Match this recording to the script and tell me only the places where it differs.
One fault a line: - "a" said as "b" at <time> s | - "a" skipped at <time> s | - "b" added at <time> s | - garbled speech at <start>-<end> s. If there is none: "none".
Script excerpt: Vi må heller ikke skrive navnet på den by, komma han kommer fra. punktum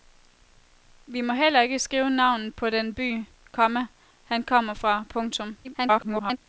- garbled speech at 5.6-6.4 s